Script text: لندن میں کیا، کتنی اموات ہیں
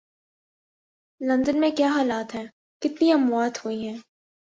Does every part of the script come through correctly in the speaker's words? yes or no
no